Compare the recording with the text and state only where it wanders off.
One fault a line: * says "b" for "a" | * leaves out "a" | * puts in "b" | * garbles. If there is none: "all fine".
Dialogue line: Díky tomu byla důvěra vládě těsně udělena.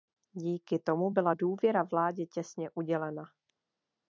all fine